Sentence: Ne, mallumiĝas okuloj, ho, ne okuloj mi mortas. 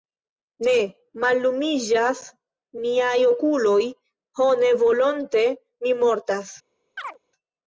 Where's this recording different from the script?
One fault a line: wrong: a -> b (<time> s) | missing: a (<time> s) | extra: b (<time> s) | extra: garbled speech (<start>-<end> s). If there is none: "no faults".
extra: miaj (2.8 s)
wrong: okuloj -> volonte (4.8 s)